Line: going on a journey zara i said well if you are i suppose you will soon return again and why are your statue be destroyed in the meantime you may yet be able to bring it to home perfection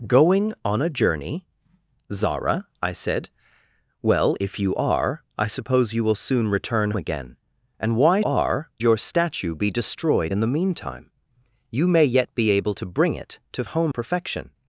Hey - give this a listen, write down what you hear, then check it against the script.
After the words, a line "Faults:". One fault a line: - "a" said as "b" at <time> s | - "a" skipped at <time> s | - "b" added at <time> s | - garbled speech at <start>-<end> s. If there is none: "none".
going on a journey zara i said well if you are i suppose you will soon return again and why are your statue be destroyed in the meantime you may yet be able to bring it to home perfection
Faults:
none